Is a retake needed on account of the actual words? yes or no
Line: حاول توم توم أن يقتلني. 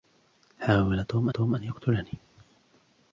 no